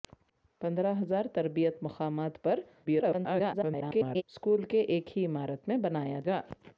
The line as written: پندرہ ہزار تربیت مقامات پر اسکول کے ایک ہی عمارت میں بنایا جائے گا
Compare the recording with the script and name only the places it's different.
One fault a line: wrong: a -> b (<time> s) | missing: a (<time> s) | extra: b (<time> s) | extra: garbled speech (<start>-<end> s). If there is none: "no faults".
extra: garbled speech (2.9-4.2 s)
missing: جائے (6.2 s)